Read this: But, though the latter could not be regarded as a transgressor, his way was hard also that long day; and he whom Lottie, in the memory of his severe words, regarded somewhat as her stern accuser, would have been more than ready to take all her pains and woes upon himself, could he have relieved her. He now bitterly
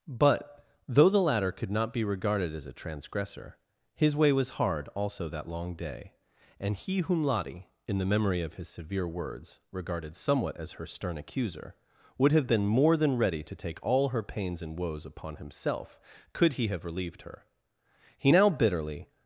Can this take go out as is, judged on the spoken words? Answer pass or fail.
pass